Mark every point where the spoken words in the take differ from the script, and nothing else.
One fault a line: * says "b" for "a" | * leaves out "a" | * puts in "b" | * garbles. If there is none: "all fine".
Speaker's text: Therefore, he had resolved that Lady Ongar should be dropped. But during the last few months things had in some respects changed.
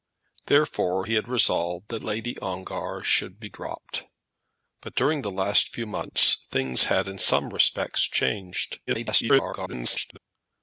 * garbles